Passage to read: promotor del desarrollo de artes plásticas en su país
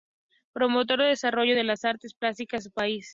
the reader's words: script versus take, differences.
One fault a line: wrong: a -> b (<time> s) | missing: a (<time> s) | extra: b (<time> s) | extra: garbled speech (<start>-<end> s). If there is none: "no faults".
extra: las (1.6 s)